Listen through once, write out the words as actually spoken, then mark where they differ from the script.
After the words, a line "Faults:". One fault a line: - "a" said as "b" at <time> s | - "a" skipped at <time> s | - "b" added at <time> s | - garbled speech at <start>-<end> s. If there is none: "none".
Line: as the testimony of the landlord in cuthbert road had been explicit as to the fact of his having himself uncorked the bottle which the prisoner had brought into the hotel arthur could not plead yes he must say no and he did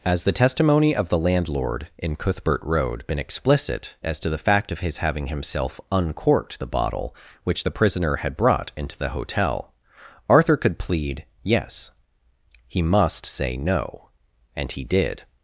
as the testimony of the landlord in cuthbert road been explicit as to the fact of his having himself uncorked the bottle which the prisoner had brought into the hotel arthur could plead yes he must say no and he did
Faults:
- "had" skipped at 3.0 s
- "not" skipped at 10.8 s